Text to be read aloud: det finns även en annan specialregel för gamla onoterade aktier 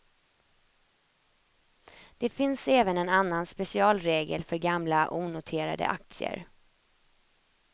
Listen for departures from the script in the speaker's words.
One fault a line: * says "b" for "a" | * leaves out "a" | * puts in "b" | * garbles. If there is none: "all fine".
all fine